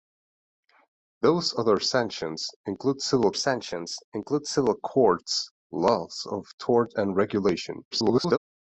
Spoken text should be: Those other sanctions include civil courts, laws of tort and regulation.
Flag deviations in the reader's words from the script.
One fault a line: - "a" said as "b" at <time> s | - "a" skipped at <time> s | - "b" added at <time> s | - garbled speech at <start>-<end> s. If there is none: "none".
- "sanctions include civil" added at 3.3 s
- garbled speech at 7.9-8.4 s